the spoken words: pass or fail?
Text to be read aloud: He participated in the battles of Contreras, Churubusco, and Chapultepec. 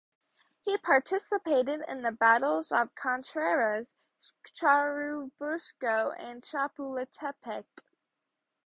pass